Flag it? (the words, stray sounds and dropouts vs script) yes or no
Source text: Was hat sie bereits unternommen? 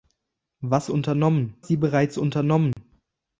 yes